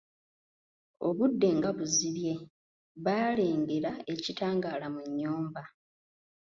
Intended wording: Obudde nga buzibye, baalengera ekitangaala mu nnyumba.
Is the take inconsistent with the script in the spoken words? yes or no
no